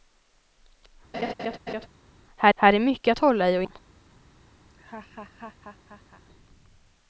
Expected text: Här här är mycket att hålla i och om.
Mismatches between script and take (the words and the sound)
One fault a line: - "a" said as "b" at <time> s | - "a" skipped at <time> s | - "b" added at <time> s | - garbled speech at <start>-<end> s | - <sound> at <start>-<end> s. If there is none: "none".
- laugh at 1.1-1.9 s
- laugh at 4.7-6.2 s